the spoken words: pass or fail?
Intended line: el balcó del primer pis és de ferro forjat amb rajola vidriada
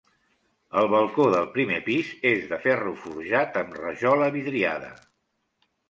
pass